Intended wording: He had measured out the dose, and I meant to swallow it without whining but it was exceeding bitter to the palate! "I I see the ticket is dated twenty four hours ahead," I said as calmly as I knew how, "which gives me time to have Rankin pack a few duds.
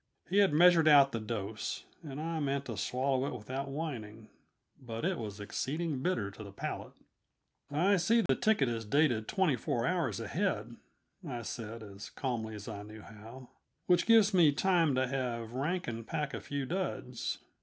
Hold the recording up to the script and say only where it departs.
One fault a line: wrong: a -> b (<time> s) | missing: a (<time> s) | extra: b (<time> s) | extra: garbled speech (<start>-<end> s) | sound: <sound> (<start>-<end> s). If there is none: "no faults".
missing: I (8.0 s)
sound: dropout (8.3-8.3 s)